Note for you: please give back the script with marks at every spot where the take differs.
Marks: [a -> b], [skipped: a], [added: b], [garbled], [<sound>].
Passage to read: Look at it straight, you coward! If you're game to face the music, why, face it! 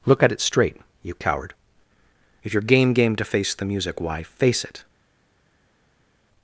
Look at it straight, you coward! If you're game [added: game] to face the music, why, face it!